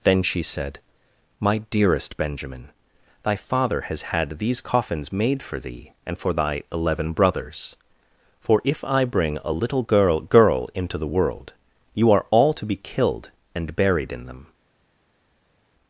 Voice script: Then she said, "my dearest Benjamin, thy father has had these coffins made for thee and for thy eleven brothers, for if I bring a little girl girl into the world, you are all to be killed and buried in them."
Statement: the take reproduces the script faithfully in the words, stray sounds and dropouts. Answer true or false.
true